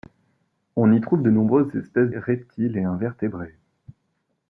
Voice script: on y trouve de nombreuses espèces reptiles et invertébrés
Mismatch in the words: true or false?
false